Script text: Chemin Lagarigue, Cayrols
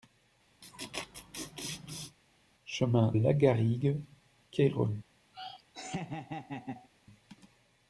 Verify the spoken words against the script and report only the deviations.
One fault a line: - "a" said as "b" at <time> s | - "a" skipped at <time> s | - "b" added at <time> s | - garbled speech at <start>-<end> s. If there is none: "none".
none